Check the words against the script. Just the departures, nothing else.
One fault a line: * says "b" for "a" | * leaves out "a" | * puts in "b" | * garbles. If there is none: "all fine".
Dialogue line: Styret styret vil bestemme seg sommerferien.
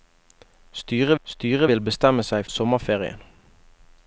all fine